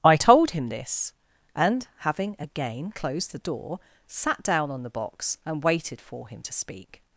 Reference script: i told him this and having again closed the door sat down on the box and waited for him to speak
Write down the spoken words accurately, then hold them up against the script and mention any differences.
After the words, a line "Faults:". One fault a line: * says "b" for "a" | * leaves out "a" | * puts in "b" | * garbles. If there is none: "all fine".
i told him this and having again closed the door sat down on the box and waited for him to speak
Faults:
all fine